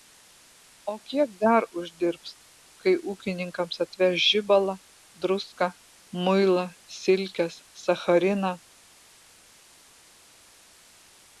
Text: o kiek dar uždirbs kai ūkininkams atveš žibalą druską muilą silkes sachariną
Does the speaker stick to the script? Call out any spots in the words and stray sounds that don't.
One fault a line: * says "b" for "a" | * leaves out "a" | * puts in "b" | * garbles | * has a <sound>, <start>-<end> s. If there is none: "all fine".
all fine